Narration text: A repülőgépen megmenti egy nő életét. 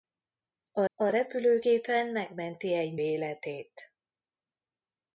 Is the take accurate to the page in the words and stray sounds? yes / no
no